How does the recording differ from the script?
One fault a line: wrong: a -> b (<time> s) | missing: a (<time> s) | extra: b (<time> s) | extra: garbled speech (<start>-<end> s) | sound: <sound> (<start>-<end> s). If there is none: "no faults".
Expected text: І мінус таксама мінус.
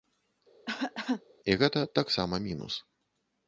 sound: cough (0.7-1.2 s)
wrong: мінус -> гэта (1.6 s)